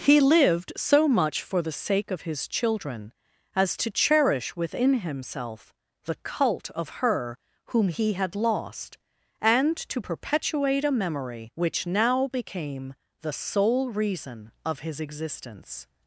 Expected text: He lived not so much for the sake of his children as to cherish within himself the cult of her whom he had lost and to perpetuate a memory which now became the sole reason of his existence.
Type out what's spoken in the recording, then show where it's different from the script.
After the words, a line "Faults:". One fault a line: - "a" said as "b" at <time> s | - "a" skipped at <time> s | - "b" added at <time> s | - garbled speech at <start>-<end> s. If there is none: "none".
He lived so much for the sake of his children as to cherish within himself the cult of her whom he had lost and to perpetuate a memory which now became the sole reason of his existence.
Faults:
- "not" skipped at 0.7 s